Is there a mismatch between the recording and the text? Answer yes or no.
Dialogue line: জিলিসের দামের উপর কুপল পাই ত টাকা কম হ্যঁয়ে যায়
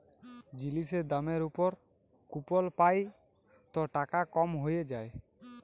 no